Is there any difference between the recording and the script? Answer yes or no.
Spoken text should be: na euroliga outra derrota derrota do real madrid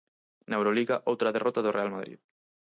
yes